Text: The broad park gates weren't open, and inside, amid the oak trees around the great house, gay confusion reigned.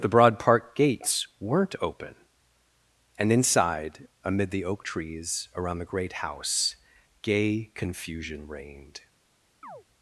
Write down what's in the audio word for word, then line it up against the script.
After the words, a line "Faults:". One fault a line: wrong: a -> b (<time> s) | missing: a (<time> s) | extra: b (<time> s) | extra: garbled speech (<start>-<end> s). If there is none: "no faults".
The broad park gates weren't open, and inside, amid the oak trees around the great house, gay confusion reigned.
Faults:
no faults